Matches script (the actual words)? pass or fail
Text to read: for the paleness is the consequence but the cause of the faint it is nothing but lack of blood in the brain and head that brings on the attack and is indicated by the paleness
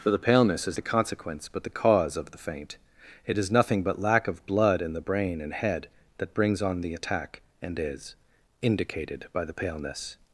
pass